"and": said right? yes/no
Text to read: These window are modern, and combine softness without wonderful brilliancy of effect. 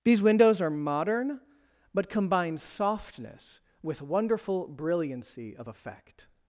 no